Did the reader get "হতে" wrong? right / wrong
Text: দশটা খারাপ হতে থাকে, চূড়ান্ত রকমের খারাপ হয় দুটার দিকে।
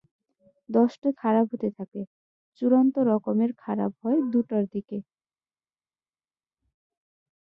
right